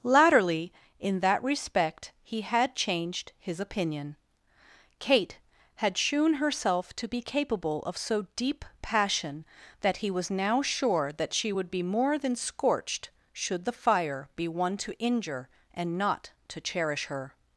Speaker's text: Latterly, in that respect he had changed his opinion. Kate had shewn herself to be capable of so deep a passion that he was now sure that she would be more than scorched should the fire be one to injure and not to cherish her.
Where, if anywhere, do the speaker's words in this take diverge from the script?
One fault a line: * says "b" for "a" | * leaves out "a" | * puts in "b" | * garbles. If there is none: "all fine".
* leaves out "a"